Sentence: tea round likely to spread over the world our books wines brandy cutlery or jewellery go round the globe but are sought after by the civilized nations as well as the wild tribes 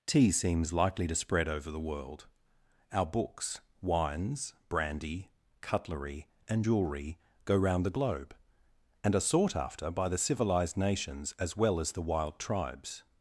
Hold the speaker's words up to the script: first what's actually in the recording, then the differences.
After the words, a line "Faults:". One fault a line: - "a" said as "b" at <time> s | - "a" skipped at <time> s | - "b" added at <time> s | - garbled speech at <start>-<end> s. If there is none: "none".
tea seems likely to spread over the world our books wines brandy cutlery and jewellery go round the globe and are sought after by the civilized nations as well as the wild tribes
Faults:
- "round" said as "seems" at 0.3 s
- "or" said as "and" at 6.5 s
- "but" said as "and" at 9.0 s